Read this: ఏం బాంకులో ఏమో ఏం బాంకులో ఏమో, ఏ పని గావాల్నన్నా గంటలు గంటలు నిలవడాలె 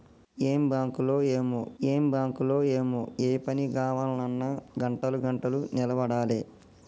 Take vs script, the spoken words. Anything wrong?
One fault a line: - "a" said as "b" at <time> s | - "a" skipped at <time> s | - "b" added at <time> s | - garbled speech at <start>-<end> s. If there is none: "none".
none